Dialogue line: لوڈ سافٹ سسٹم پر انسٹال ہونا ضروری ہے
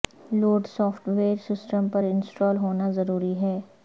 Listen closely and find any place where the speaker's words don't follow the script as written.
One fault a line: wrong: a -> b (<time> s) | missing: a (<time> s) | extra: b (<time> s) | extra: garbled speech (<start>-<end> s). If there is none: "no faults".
extra: ویئر (1.1 s)